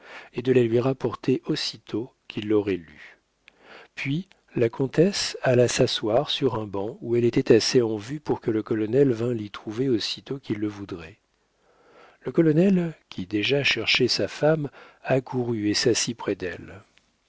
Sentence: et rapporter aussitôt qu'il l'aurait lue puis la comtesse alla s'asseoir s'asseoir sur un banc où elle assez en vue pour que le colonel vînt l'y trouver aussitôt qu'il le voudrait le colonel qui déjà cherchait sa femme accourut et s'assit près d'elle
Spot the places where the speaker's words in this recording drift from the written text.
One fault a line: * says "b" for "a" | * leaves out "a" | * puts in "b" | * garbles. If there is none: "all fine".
* puts in "de la lui"
* leaves out "s'asseoir"
* puts in "était"